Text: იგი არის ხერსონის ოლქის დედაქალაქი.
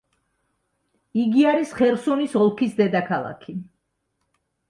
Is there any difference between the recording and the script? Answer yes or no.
no